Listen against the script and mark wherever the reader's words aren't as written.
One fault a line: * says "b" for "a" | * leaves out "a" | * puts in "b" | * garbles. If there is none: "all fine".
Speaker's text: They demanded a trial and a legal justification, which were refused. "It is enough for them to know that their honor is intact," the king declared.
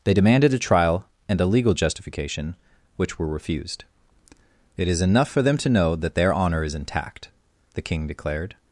all fine